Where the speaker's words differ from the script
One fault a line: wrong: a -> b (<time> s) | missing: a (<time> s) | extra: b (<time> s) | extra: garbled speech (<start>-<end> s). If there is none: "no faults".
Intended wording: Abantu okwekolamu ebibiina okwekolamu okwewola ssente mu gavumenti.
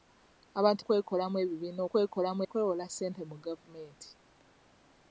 no faults